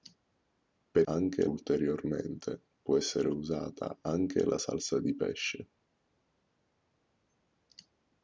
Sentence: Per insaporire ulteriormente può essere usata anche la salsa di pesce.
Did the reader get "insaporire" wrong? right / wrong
wrong